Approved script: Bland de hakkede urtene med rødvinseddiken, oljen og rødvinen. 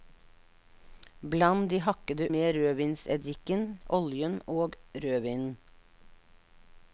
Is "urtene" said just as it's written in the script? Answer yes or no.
no